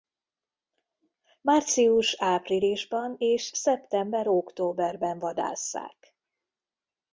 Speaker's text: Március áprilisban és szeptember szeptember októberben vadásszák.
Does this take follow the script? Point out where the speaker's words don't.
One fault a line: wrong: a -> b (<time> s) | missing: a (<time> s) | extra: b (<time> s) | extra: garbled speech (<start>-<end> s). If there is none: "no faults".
missing: szeptember (4.3 s)